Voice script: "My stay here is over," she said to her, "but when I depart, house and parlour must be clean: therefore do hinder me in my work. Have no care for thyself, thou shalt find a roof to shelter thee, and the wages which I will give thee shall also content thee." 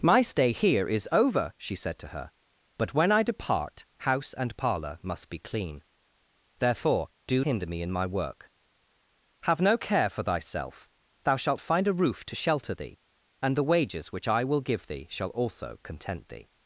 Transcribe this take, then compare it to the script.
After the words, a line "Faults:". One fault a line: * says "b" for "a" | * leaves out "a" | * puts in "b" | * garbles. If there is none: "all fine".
"My stay here is over," she said to her, "but when I depart, house and parlour must be clean: therefore do hinder me in my work. Have no care for thyself, thou shalt find a roof to shelter thee, and the wages which I will give thee shall also content thee."
Faults:
all fine